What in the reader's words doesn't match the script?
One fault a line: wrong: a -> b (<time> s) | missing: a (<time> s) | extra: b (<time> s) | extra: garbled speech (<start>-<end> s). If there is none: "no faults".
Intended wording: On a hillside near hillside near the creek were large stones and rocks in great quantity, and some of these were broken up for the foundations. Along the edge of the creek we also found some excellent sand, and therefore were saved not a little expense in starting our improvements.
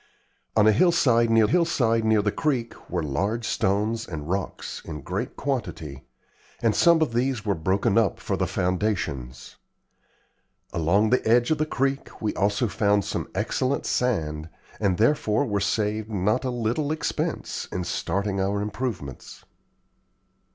no faults